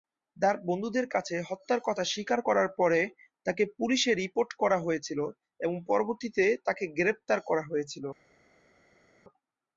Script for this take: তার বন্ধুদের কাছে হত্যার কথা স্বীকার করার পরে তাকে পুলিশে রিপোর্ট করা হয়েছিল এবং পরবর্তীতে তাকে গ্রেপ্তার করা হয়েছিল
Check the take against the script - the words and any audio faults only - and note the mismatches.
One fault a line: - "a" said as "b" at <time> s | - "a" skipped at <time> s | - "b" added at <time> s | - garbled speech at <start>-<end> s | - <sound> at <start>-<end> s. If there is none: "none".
none